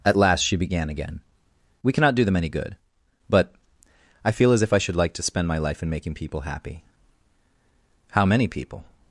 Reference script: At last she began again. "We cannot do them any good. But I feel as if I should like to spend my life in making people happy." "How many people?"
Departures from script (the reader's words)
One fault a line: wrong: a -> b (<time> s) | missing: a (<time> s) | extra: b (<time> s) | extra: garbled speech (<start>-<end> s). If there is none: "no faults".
no faults